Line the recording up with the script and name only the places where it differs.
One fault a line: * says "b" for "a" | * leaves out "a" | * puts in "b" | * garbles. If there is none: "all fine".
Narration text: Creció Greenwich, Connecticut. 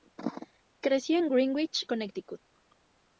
* puts in "en"